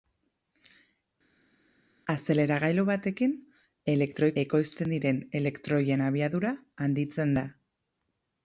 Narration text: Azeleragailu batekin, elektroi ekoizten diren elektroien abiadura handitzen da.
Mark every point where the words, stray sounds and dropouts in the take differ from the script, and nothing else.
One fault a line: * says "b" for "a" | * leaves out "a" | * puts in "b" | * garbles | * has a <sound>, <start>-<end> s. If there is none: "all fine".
all fine